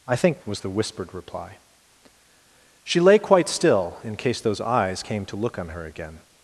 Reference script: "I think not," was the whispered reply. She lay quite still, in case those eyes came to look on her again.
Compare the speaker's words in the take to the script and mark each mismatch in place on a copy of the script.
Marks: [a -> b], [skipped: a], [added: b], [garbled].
"I think [skipped: not,"] was the whispered reply. She lay quite still, in case those eyes came to look on her again.